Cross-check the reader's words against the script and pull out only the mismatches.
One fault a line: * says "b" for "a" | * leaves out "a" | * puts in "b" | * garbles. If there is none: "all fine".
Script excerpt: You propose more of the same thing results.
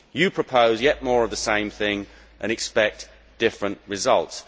* puts in "yet"
* puts in "and expect different"